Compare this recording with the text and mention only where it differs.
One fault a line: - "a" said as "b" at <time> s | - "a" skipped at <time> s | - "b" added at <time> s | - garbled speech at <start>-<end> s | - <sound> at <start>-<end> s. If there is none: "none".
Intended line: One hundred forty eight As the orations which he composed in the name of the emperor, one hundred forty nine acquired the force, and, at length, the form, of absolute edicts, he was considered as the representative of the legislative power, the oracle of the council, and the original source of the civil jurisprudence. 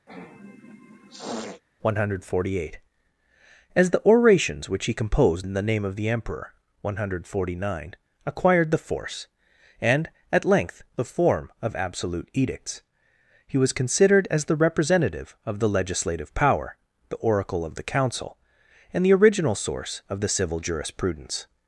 - sniff at 0.1-1.6 s